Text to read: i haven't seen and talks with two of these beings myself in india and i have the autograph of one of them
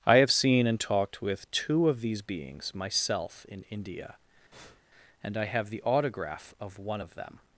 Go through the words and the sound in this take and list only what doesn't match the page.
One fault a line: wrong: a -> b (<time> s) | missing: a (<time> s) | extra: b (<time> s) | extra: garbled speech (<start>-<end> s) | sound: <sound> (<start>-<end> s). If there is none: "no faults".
wrong: haven't -> have (0.2 s)
wrong: talks -> talked (0.8 s)
sound: breath (4.5-4.8 s)